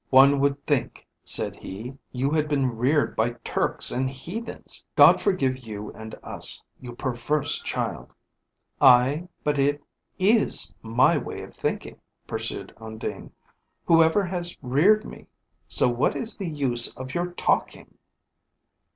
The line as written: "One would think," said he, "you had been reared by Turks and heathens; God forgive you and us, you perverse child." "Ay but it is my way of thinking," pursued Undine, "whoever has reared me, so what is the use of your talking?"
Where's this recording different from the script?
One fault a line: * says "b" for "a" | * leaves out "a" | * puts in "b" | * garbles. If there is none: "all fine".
all fine